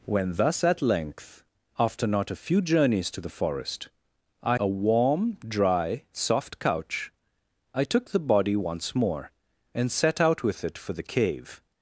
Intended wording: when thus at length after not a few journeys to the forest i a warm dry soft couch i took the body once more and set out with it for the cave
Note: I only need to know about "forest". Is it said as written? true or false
true